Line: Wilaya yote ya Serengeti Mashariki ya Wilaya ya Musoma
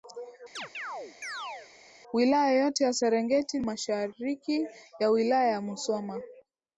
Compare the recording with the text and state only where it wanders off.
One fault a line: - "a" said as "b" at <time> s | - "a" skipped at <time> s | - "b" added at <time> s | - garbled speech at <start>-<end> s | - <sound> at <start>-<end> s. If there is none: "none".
- chirp at 0.6-1.7 s